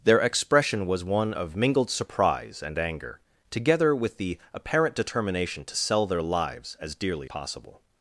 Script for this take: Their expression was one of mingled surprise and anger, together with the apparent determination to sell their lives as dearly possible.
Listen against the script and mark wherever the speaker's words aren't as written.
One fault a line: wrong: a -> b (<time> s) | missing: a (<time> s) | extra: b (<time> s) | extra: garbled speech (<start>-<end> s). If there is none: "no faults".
no faults